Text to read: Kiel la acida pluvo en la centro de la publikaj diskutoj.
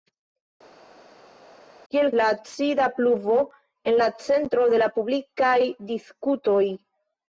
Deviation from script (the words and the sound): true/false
false